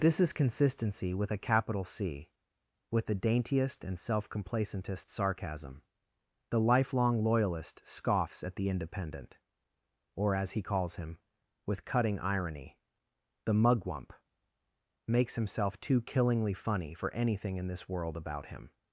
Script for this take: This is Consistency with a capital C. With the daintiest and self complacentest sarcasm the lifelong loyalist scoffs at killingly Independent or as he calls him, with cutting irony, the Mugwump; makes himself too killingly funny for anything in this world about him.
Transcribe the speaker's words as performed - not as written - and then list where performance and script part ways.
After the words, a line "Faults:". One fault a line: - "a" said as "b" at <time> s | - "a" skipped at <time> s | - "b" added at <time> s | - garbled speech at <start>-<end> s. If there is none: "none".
This is Consistency with a capital C. With the daintiest and self complacentest sarcasm the lifelong loyalist scoffs at the Independent or as he calls him, with cutting irony, the Mugwump; makes himself too killingly funny for anything in this world about him.
Faults:
- "killingly" said as "the" at 8.6 s